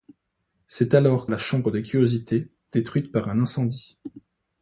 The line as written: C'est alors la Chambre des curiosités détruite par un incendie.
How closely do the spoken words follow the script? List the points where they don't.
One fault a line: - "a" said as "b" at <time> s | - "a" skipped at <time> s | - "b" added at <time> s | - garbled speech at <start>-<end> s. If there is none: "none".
none